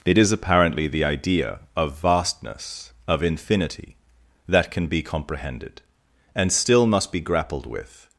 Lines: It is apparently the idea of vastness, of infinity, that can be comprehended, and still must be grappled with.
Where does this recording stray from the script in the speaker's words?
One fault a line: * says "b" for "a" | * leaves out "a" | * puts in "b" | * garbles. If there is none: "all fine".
all fine